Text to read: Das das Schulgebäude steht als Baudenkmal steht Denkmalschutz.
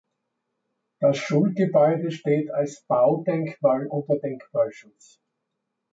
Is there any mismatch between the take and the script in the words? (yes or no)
yes